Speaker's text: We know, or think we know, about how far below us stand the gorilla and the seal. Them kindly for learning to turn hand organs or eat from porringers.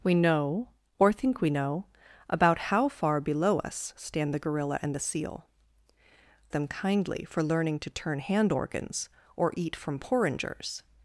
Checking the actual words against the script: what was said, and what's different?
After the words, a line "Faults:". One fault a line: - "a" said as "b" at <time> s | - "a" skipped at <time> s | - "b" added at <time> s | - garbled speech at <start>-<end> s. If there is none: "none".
We know, or think we know, about how far below us stand the gorilla and the seal. Them kindly for learning to turn hand organs or eat from porringers.
Faults:
none